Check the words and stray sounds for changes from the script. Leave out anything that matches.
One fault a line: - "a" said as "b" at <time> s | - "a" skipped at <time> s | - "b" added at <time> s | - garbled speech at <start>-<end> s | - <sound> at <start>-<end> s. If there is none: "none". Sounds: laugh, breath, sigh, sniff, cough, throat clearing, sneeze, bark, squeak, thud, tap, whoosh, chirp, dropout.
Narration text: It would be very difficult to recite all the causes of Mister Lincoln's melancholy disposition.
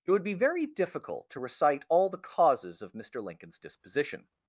- "melancholy" skipped at 3.6 s